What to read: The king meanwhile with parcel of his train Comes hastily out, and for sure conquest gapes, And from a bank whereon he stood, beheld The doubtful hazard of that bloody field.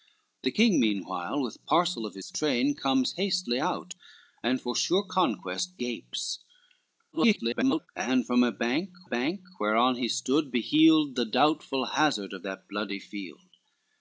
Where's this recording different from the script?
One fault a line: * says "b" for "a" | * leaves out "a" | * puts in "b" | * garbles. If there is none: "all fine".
* garbles
* puts in "bank"